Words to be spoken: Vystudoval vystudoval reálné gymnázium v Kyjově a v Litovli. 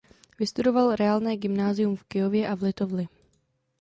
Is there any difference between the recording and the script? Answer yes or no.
yes